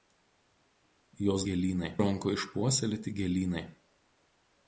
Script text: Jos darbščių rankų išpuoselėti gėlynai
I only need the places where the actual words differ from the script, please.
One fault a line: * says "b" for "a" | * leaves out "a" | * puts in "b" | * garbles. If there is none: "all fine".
* says "gėlynai" for "darbščių"